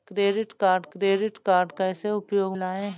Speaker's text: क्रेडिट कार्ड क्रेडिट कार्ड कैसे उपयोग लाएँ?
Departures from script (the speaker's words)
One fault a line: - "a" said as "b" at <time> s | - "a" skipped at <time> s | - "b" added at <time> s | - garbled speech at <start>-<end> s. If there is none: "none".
none